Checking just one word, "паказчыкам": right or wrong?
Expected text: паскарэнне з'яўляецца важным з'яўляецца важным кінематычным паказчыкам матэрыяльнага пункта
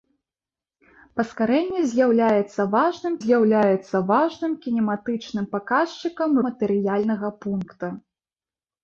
right